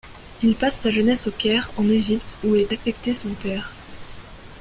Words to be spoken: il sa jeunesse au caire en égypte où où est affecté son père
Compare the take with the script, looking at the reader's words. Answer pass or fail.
fail